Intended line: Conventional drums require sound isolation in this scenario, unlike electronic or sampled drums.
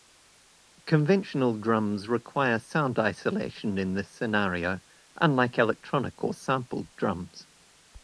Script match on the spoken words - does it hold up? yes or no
yes